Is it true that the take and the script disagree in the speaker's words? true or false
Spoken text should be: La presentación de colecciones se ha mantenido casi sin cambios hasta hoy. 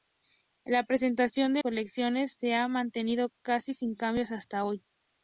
false